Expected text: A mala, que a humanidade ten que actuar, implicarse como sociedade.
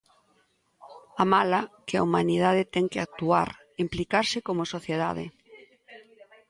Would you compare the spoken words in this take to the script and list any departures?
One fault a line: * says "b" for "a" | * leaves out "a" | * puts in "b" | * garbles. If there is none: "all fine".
all fine